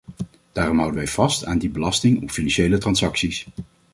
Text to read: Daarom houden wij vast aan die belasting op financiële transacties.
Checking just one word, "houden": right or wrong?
right